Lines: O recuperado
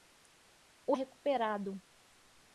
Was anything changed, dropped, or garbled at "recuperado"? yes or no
no